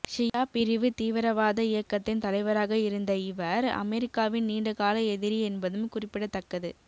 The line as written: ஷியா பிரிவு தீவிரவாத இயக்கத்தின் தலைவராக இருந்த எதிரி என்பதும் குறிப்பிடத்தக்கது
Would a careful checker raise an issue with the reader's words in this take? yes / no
yes